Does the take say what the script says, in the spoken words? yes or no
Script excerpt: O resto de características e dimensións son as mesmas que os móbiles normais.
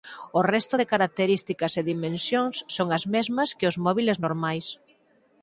yes